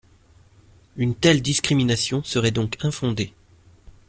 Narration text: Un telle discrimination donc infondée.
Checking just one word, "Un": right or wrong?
wrong